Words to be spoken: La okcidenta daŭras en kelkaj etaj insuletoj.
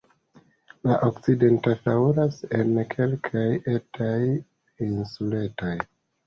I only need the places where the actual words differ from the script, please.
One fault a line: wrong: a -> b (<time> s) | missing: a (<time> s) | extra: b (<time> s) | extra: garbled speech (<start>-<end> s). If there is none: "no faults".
no faults